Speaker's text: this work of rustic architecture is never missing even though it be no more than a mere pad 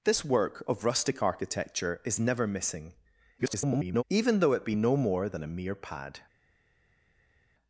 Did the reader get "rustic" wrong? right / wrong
right